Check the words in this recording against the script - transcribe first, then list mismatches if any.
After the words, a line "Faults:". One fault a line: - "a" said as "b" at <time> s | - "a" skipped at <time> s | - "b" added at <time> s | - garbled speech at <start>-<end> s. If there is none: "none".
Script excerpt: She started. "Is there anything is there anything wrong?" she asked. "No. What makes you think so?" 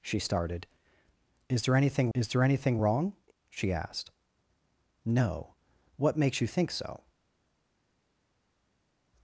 She started. "Is there anything is there anything wrong?" she asked. "No. What makes you think so?"
Faults:
none